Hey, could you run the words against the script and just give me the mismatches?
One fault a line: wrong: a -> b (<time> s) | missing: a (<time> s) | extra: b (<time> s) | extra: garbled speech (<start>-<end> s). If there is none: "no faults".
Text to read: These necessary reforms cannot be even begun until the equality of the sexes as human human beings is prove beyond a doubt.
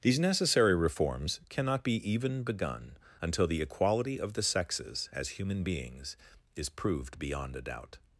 missing: human (5.6 s)
wrong: prove -> proved (6.7 s)